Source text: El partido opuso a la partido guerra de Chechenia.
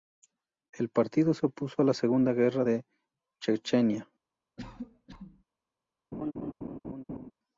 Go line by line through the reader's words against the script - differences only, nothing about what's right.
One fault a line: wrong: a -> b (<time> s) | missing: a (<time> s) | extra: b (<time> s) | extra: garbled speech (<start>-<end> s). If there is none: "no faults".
extra: se (1.3 s)
wrong: partido -> segunda (1.9 s)